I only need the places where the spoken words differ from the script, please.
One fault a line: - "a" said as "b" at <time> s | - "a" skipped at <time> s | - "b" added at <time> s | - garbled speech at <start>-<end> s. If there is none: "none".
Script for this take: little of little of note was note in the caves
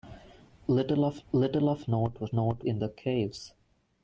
none